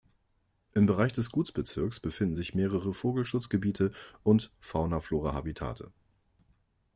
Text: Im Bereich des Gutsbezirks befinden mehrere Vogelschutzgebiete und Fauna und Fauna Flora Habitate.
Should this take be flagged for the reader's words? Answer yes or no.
yes